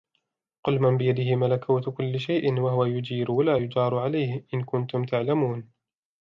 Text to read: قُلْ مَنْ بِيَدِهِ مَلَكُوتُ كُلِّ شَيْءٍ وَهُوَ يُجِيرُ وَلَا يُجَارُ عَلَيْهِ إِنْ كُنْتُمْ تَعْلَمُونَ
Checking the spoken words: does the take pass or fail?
pass